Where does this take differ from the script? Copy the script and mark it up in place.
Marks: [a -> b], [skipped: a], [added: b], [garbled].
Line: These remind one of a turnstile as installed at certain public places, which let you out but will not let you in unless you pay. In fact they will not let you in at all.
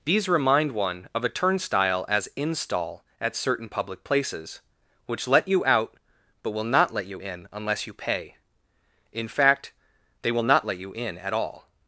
These remind one of a turnstile as [installed -> install] at certain public places, which let you out but will not let you in unless you pay. In fact they will not let you in at all.